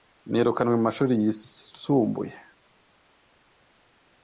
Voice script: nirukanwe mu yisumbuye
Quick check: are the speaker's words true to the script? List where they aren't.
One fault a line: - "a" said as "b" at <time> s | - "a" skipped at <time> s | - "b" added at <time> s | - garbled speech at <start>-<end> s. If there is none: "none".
- "mashuri" added at 0.9 s